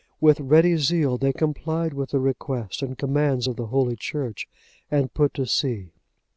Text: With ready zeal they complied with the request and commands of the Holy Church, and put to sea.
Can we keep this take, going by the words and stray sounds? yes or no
yes